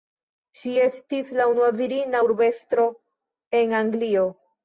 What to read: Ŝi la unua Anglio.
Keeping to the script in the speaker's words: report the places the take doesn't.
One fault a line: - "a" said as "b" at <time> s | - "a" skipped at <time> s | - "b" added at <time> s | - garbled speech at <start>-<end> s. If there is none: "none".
- "estis" added at 0.8 s
- "virina urbestro en" added at 1.8 s